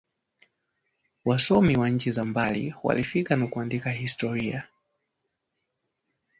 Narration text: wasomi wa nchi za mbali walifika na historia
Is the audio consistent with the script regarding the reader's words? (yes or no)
no